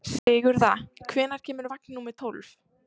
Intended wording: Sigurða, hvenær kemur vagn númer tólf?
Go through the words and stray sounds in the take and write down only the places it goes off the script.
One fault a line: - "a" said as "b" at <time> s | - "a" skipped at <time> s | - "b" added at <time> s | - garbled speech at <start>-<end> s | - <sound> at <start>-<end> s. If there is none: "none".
- dropout at 0.2-0.3 s